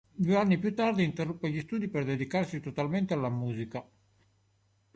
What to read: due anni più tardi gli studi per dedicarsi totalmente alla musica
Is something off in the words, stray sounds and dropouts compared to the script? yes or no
yes